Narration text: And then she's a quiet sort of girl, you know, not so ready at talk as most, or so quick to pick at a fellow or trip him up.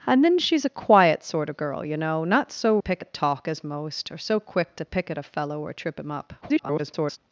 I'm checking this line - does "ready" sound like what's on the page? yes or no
no